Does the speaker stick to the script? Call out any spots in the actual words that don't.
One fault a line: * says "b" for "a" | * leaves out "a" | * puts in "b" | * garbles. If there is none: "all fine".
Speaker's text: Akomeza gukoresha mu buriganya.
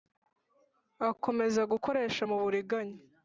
all fine